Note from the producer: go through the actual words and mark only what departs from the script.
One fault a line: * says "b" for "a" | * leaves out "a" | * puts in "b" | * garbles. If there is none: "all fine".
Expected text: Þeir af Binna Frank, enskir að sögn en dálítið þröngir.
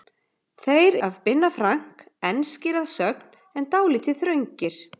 all fine